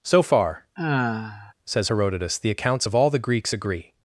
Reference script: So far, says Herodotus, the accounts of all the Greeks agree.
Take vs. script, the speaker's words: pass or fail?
pass